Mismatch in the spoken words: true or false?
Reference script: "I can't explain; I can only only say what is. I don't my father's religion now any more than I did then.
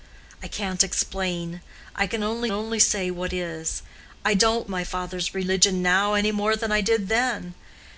false